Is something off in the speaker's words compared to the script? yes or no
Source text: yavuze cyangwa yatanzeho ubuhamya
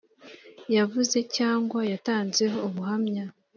no